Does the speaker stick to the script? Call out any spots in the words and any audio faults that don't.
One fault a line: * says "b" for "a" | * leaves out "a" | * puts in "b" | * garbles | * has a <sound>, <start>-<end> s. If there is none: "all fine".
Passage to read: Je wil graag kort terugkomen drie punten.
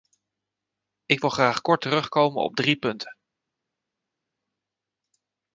* says "Ik" for "Je"
* puts in "op"